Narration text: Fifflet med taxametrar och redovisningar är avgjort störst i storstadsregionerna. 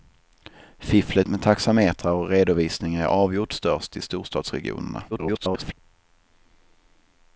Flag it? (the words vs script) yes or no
yes